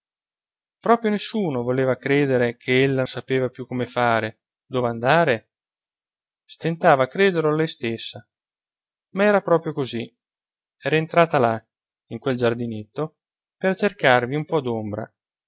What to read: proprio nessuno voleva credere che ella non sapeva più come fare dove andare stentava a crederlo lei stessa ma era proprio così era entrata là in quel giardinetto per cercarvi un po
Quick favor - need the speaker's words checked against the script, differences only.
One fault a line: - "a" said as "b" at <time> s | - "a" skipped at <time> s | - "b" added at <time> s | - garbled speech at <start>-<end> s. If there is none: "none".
- "non" skipped at 3.0 s